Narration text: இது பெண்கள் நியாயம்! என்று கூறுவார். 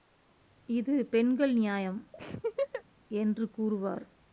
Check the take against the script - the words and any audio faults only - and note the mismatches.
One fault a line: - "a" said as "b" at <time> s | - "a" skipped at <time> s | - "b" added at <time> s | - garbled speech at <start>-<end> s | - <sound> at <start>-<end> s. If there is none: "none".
- laugh at 2.1-2.8 s